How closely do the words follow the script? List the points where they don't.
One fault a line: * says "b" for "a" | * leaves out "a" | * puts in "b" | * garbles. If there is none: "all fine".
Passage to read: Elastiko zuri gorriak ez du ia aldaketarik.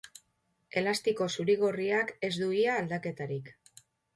all fine